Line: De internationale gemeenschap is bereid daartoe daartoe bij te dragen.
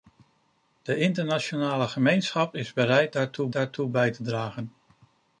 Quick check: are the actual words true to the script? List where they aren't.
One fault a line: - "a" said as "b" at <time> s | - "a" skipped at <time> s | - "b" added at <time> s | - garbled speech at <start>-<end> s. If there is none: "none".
none